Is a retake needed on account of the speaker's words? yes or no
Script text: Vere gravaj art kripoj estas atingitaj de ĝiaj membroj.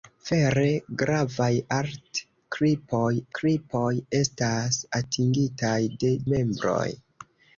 yes